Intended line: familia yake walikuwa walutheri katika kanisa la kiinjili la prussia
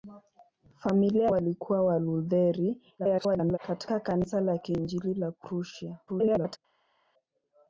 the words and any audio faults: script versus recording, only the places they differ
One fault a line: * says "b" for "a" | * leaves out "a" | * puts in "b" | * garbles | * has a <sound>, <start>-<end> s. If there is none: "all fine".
* leaves out "yake"
* garbles
* garbles